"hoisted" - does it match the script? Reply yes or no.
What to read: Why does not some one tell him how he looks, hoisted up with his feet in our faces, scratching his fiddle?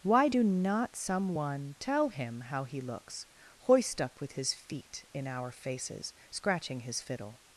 no